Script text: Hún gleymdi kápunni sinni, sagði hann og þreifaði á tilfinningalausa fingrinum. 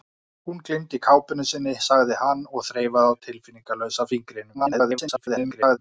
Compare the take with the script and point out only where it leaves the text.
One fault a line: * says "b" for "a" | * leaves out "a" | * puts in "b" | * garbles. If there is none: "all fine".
* garbles